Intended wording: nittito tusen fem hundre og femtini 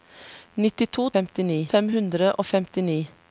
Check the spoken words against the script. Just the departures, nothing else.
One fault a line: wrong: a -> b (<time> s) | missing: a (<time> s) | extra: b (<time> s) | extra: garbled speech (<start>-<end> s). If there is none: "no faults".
wrong: tusen -> femtini (1.1 s)